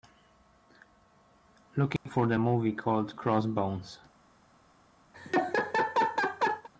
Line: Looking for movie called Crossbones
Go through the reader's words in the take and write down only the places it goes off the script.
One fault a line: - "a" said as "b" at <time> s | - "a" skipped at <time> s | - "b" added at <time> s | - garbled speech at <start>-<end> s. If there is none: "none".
- "the" added at 2.2 s